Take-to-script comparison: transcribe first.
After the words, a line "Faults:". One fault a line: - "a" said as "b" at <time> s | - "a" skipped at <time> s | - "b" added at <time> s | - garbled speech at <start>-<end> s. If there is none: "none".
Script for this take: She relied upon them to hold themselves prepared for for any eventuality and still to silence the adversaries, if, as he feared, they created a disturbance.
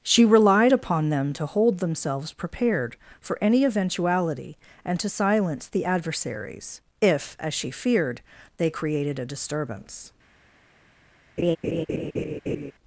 She relied upon them to hold themselves prepared for any eventuality and to silence the adversaries, if, as she feared, they created a disturbance.
Faults:
- "for" skipped at 3.4 s
- "still" skipped at 5.0 s
- "he" said as "she" at 7.5 s